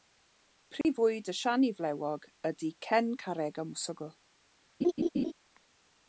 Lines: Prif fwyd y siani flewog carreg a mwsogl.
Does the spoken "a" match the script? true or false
true